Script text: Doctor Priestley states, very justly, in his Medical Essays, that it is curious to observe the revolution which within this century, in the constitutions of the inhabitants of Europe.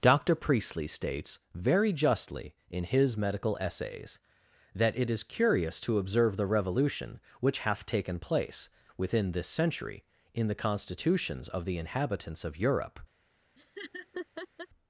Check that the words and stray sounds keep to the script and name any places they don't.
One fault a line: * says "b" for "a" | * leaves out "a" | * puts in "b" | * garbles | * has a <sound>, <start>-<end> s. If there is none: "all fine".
* puts in "hath taken place"
* has a laugh, 13.6-14.7 s